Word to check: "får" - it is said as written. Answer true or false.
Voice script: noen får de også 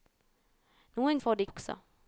true